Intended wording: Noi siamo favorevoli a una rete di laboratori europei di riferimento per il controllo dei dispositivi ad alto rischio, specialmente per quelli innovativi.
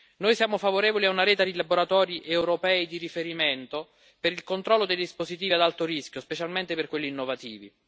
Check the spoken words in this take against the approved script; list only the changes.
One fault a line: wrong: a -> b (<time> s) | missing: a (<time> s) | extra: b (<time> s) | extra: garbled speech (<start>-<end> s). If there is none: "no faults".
no faults